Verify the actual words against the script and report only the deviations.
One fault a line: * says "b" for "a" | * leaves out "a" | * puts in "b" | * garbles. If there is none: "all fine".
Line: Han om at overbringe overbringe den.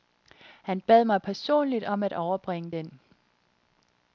* puts in "bad mig personligt"
* leaves out "overbringe"